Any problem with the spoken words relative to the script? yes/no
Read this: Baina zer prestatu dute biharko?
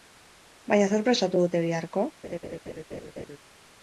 no